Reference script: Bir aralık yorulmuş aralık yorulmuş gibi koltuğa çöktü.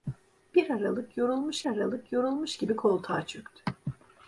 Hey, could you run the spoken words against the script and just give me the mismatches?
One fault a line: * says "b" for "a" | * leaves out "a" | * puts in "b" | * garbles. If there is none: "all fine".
all fine